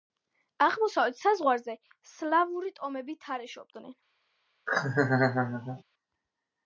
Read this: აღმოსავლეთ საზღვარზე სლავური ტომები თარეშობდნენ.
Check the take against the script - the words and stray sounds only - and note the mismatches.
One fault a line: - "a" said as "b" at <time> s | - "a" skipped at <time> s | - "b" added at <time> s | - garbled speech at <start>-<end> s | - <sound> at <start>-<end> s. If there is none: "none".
- laugh at 4.7-5.8 s